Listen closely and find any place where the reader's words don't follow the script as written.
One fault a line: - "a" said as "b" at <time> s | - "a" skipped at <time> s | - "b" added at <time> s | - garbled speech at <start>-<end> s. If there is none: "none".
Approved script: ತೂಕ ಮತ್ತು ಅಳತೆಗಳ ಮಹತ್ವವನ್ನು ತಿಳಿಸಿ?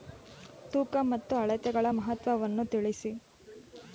none